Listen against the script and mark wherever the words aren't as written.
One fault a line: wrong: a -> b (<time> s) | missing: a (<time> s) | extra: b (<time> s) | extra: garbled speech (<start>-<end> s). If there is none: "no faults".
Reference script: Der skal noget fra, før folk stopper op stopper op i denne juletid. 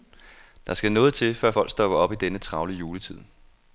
wrong: fra -> til (1.1 s)
missing: stopper op (2.1 s)
extra: travle (2.4 s)